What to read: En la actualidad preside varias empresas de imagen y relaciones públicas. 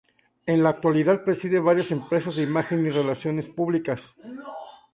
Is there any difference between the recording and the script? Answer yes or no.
no